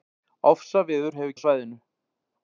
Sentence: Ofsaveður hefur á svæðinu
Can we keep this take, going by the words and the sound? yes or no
yes